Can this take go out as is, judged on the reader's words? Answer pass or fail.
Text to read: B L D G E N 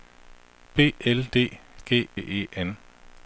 pass